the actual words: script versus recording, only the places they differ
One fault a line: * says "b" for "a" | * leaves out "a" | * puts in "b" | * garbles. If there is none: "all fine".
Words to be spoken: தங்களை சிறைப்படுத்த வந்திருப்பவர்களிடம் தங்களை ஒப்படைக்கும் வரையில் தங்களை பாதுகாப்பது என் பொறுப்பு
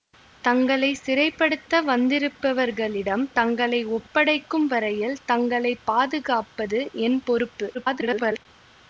* garbles